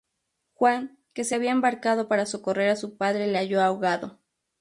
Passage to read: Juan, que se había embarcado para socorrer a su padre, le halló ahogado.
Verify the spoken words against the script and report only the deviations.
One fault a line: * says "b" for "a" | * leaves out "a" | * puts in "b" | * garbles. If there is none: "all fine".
all fine